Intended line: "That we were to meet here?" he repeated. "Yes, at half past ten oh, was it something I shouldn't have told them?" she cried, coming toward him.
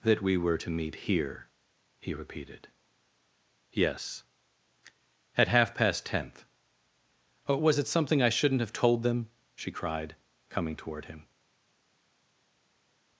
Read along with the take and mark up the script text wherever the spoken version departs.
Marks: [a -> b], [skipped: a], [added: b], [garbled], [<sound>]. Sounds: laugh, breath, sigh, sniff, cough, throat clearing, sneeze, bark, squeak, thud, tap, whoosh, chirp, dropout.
"That we were to meet here?" he repeated. "Yes, at half past [ten -> tenth] oh, was it something I shouldn't have told them?" she cried, coming toward him.